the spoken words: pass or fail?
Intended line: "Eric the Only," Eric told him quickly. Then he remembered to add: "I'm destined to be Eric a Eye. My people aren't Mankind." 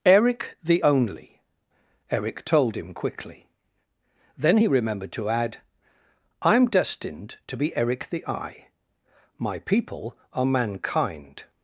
fail